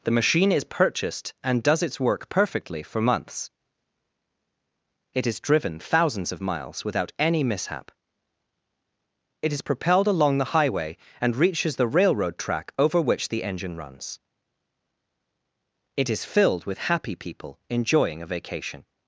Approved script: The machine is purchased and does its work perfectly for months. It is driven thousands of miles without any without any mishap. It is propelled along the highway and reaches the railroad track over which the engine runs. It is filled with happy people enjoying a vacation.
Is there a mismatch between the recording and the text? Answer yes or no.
yes